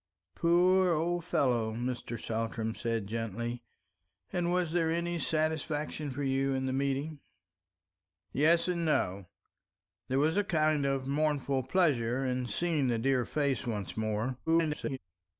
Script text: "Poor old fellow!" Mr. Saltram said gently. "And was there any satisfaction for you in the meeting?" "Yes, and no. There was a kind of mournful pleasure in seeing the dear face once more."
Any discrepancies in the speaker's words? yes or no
yes